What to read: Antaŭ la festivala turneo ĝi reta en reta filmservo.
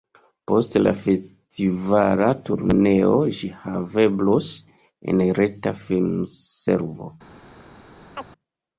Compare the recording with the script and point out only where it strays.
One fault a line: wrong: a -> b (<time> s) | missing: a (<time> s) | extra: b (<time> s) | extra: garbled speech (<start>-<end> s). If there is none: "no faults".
wrong: Antaŭ -> Post (0.5 s)
wrong: reta -> haveblos (3.7 s)